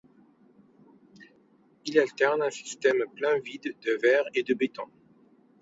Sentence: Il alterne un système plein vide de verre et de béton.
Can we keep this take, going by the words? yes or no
yes